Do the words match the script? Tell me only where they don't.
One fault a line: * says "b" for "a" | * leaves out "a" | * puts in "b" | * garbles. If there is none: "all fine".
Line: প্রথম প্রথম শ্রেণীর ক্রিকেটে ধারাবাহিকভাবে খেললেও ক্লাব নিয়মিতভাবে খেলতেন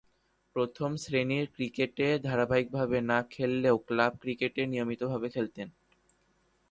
* leaves out "প্রথম"
* puts in "না"
* puts in "ক্রিকেটে"